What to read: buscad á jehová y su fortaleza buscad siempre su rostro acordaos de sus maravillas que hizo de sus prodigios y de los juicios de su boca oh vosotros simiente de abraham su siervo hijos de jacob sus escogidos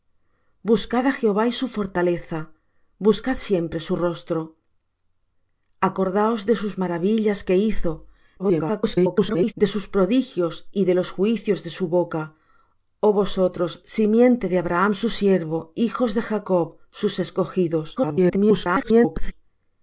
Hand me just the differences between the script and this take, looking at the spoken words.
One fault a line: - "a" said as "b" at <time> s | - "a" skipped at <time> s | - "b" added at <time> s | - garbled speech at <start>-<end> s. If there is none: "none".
- garbled speech at 8.4-9.5 s
- garbled speech at 18.0-19.3 s